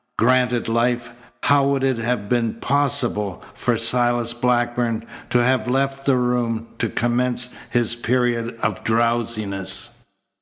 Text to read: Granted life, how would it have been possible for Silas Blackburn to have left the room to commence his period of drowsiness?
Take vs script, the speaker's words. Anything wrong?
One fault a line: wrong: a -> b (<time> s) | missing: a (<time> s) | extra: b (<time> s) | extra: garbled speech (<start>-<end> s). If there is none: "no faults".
no faults